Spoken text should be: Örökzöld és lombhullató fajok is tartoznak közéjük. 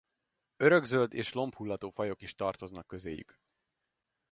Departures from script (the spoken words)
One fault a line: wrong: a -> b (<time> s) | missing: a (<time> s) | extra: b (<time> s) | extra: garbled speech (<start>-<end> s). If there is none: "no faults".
no faults